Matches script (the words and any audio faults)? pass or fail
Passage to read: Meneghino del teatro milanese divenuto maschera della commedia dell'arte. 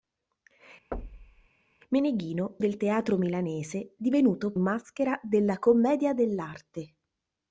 fail